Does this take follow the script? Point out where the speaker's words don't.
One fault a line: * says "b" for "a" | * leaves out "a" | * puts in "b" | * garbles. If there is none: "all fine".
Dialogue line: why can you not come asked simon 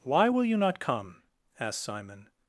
* says "will" for "can"